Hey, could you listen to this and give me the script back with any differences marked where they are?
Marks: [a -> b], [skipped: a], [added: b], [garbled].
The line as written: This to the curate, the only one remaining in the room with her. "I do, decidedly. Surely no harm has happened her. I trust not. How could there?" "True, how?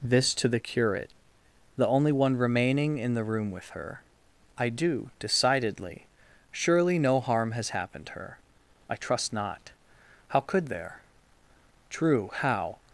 This to the curate, the only one remaining in the room with her. "I do, decidedly. Surely no harm has happened her. I trust not. How could there?" "True, how?